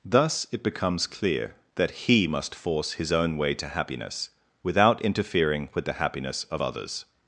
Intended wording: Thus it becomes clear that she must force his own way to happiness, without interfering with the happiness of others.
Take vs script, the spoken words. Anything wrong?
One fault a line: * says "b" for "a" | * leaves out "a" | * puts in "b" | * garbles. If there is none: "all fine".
* says "he" for "she"